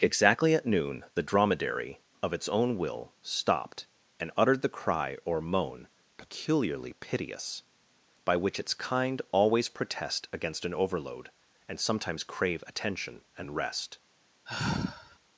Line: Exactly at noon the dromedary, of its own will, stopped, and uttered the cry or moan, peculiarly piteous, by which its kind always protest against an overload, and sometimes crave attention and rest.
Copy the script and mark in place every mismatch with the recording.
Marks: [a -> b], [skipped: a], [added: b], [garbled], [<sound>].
Exactly at noon the dromedary, of its own will, stopped, and uttered the cry or moan, peculiarly piteous, by which its kind always protest against an overload, and sometimes crave attention and rest. [sigh]